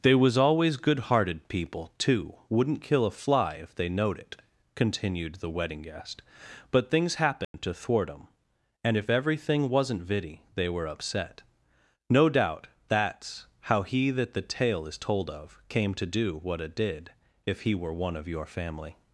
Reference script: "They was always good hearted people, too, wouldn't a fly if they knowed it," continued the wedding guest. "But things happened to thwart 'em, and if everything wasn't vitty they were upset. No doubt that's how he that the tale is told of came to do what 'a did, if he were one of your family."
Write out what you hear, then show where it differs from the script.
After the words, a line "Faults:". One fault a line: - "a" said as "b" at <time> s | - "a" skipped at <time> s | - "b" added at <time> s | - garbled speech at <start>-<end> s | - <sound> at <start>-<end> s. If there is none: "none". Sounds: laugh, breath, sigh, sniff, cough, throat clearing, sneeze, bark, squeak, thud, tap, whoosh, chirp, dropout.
"They was always good hearted people, too, wouldn't kill a fly if they knowed it," continued the wedding guest. "But things happened to thwart 'em, and if everything wasn't vitty they were upset. No doubt that's how he that the tale is told of came to do what 'a did, if he were one of your family."
Faults:
- "kill" added at 2.8 s
- dropout at 7.4-7.5 s